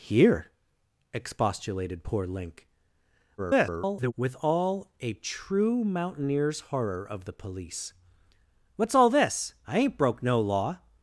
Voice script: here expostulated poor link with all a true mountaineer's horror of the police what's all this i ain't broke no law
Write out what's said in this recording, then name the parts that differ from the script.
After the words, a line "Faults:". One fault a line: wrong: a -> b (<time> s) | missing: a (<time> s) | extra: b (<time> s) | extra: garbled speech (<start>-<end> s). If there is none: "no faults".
here expostulated poor link [garbled] with all a true mountaineer's horror of the police what's all this i ain't broke no law
Faults:
extra: garbled speech (3.4-4.1 s)